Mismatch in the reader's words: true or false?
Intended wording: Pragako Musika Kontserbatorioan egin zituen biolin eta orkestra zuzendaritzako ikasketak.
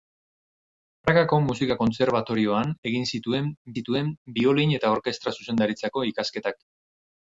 true